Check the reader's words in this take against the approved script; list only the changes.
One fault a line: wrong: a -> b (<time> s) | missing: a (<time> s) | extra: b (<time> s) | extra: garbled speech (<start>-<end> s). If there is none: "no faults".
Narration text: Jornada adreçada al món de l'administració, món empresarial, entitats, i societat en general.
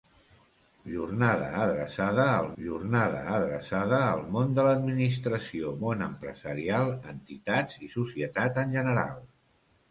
extra: jornada adreçada al (2.6 s)